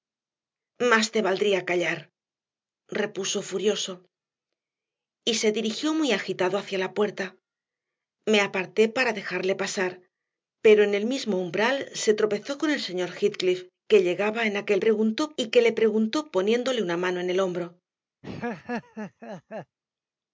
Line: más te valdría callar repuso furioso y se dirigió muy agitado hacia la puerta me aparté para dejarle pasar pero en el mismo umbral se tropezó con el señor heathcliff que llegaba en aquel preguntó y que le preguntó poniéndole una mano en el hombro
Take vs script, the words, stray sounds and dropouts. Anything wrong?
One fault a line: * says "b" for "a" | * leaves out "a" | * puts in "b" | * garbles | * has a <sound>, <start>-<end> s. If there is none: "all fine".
* has a laugh, 18.2-19.8 s